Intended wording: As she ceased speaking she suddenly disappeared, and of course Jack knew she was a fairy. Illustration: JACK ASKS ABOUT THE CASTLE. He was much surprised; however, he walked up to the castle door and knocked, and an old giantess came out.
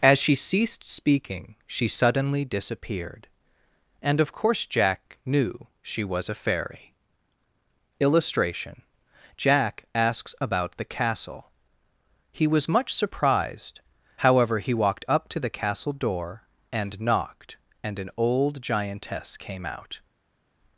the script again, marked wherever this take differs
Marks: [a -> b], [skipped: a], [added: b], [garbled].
As she ceased speaking she suddenly disappeared, and of course Jack knew she was a fairy. Illustration: JACK ASKS ABOUT THE CASTLE. He was much surprised; however, he walked up to the castle door and knocked, and an old giantess came out.